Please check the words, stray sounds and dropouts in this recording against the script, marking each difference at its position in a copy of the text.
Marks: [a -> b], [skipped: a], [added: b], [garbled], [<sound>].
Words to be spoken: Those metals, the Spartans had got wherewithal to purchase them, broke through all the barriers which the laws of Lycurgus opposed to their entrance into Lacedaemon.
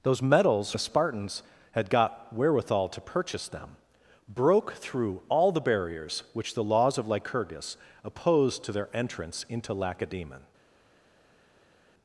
Those metals, the Spartans had got wherewithal to purchase them, broke through all the barriers which the laws of Lycurgus opposed to their entrance into Lacedaemon.